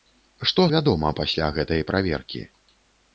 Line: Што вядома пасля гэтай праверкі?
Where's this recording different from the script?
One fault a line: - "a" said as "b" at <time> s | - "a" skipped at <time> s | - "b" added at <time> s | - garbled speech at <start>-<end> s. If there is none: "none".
none